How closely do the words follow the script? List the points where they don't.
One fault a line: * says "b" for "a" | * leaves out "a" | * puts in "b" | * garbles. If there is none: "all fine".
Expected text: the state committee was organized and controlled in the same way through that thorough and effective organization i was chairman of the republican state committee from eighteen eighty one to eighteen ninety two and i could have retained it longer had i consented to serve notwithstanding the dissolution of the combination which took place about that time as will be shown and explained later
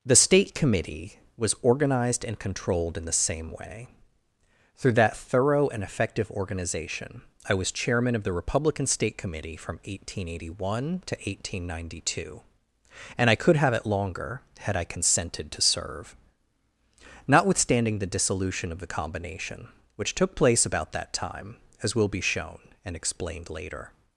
* leaves out "retained"